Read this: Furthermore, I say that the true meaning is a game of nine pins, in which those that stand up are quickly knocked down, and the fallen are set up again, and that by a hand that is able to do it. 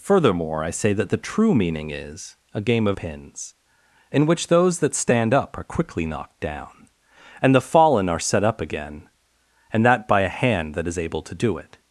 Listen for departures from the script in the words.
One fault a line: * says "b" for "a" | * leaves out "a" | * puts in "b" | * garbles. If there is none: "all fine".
* leaves out "nine"